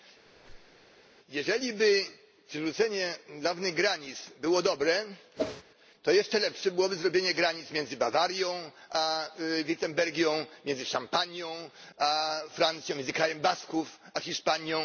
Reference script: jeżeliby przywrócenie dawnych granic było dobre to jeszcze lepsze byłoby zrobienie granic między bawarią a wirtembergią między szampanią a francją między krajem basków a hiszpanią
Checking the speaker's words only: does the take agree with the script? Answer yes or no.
yes